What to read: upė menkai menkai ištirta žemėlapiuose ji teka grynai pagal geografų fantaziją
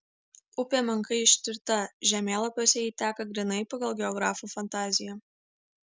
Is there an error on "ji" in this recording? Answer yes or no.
no